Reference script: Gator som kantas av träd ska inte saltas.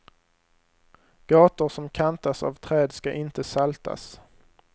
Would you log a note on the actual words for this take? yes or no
no